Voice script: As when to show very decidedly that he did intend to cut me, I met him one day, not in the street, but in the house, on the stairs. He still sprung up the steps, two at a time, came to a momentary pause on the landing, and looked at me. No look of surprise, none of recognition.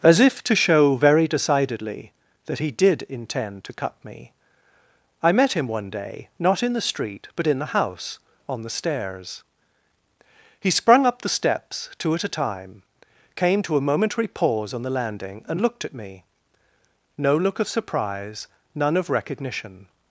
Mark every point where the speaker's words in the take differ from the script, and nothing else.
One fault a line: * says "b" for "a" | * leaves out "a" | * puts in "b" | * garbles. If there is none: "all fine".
* says "if" for "when"
* leaves out "still"